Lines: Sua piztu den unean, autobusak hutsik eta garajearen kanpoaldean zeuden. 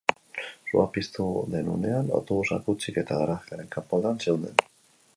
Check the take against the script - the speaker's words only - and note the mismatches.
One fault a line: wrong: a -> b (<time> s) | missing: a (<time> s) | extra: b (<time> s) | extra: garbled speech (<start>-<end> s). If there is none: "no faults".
no faults